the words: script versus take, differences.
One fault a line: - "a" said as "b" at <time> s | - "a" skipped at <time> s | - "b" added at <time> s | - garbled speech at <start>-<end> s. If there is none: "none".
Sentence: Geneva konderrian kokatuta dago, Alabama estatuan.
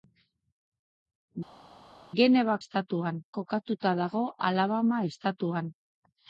- "konderrian" said as "estatuan" at 2.6 s